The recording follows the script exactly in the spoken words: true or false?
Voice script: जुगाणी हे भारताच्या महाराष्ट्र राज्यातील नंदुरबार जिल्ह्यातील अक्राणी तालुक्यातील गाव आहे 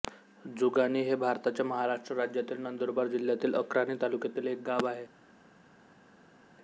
false